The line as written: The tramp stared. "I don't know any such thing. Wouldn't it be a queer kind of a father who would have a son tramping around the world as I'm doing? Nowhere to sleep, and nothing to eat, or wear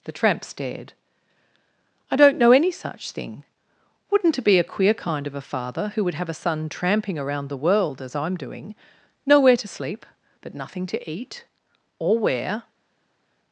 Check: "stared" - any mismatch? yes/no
no